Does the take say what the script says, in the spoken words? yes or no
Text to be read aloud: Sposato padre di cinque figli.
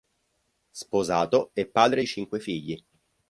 no